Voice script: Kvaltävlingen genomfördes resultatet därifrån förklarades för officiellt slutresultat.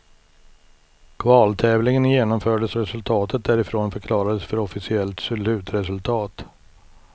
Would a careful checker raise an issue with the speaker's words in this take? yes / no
no